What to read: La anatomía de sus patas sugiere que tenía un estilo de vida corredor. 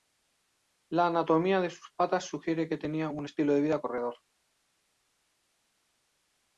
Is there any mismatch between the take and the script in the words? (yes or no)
no